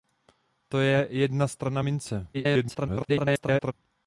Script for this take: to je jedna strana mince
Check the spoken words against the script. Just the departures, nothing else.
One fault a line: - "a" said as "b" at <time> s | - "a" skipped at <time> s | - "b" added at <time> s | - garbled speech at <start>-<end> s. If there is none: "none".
- garbled speech at 2.3-3.7 s